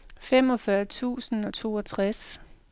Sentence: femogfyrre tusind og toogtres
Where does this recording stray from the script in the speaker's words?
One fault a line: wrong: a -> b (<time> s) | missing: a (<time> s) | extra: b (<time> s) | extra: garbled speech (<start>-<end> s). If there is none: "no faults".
no faults